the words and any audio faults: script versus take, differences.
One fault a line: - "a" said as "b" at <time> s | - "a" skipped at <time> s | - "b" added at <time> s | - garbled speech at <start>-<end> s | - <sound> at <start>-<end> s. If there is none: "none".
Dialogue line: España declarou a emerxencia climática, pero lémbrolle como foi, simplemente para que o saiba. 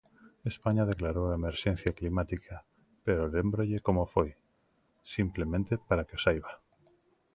none